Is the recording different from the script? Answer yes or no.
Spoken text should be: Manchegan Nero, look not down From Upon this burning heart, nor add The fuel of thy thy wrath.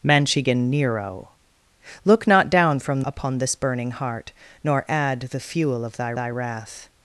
no